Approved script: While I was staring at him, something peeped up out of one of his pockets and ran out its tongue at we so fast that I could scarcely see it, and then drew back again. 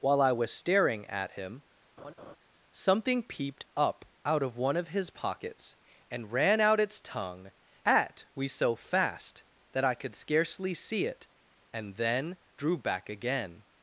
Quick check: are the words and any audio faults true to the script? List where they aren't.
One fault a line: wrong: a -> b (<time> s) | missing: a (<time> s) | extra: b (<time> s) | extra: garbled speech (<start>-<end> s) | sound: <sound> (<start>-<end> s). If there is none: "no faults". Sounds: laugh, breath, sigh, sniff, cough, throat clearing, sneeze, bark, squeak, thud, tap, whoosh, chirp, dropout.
sound: laugh (2.0-2.4 s)